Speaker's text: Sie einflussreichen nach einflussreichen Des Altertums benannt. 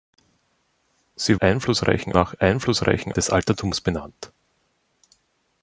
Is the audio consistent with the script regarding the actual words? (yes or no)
yes